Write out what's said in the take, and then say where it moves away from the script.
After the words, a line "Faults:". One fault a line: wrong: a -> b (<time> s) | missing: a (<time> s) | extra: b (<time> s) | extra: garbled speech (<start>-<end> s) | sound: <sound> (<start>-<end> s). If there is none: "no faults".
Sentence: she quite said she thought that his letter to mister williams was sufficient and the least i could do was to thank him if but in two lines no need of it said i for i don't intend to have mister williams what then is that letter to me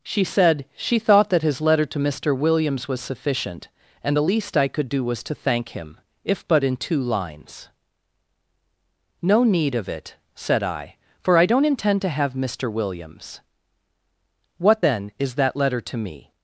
she said she thought that his letter to mister williams was sufficient and the least i could do was to thank him if but in two lines no need of it said i for i don't intend to have mister williams what then is that letter to me
Faults:
missing: quite (0.2 s)